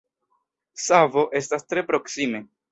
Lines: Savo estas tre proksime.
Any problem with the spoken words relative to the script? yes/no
no